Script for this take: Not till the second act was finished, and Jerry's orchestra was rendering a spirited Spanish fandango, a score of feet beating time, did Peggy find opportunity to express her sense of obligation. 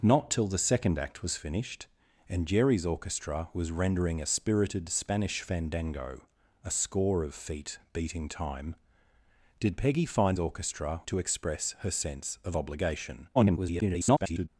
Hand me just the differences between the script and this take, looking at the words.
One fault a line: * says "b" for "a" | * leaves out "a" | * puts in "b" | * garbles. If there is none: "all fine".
* says "orchestra" for "opportunity"
* garbles